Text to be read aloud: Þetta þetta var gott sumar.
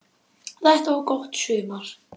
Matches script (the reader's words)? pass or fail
fail